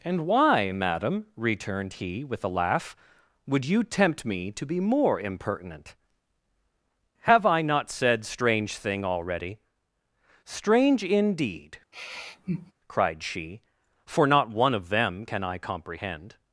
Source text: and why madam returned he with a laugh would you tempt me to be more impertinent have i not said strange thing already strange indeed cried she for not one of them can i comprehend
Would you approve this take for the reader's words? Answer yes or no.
yes